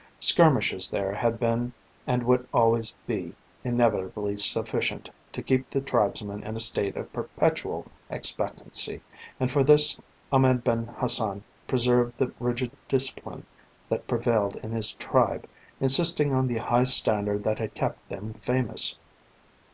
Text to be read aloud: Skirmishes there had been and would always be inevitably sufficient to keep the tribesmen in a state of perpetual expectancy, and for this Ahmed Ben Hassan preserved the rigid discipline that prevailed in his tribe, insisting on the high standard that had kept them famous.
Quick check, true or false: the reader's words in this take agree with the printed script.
true